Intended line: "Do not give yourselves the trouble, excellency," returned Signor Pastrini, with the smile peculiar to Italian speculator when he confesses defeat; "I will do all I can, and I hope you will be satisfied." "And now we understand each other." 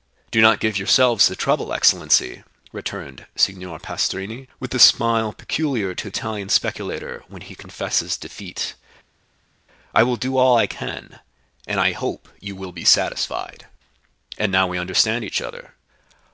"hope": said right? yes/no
yes